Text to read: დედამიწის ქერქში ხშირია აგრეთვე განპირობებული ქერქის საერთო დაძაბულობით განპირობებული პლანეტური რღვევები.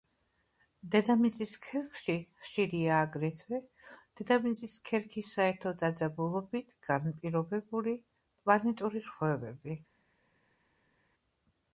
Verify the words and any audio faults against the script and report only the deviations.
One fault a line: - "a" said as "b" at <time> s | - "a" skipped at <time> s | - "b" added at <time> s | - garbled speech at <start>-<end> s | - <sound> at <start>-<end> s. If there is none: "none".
- "განპირობებული" said as "დედამიწის" at 4.2 s